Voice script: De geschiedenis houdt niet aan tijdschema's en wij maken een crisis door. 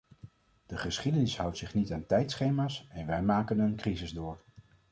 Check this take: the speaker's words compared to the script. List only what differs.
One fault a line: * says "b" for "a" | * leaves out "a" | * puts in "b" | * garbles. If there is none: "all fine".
* puts in "zich"